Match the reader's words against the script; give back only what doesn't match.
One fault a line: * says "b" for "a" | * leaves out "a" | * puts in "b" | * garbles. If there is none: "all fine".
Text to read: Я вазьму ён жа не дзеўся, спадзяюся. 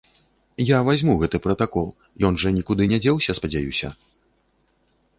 * puts in "гэты пратакол"
* puts in "нікуды"